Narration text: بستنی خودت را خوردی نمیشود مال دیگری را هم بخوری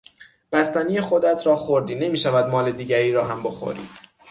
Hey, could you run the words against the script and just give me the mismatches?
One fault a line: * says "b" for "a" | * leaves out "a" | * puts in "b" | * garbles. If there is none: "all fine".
all fine